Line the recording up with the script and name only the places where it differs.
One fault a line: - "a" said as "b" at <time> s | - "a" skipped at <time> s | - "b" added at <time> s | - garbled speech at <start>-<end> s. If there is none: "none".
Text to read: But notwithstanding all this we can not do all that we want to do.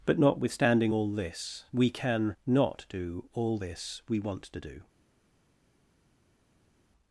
- "that" said as "this" at 3.6 s